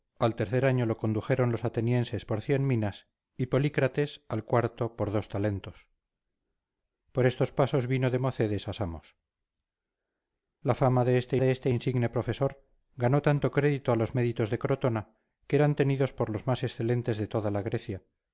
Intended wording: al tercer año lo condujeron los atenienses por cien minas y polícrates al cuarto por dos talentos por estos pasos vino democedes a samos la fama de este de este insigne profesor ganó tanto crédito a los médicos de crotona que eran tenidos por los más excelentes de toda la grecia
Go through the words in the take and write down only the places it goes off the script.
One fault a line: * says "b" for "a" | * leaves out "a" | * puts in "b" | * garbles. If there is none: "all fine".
all fine